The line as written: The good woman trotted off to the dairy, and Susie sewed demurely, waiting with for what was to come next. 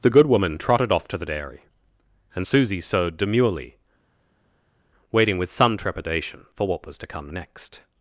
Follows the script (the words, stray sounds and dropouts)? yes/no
no